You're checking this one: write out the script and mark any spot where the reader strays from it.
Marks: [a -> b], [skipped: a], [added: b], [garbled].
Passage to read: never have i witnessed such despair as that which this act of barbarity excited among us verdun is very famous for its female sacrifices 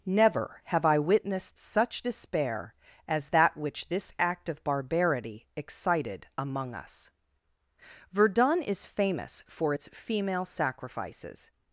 never have i witnessed such despair as that which this act of barbarity excited among us verdun is [skipped: very] famous for its female sacrifices